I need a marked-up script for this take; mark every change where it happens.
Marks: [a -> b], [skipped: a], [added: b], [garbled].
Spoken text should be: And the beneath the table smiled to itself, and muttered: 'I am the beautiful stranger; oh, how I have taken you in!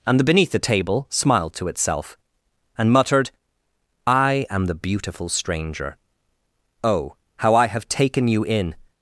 And the beneath the table smiled to itself, and muttered: 'I am the beautiful stranger; oh, how I have taken you in!